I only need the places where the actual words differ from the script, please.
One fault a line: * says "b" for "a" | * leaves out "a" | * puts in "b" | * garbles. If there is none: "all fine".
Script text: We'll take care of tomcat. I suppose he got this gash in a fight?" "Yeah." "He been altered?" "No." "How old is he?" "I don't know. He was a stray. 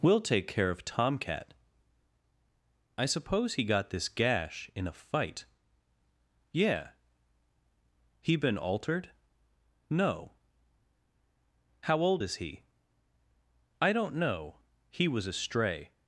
all fine